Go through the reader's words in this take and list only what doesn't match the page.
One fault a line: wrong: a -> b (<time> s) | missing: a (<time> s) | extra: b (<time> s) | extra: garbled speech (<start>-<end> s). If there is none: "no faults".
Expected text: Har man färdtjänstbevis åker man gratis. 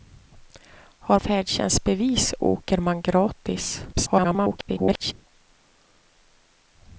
missing: man (1.2 s)
extra: garbled speech (3.9-5.1 s)